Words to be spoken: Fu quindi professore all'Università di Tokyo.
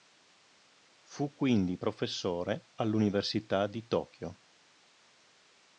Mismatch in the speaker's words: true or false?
false